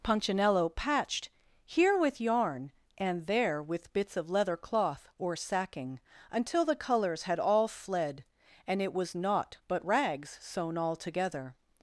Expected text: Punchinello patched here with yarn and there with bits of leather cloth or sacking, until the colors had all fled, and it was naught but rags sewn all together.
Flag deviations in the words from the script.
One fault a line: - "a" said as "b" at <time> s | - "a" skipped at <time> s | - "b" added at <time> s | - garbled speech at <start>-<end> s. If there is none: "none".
none